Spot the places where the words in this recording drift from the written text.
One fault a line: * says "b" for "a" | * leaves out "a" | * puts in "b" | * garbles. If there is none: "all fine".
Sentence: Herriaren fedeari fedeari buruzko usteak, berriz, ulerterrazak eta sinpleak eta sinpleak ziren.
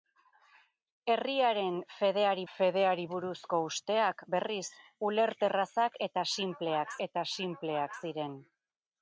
all fine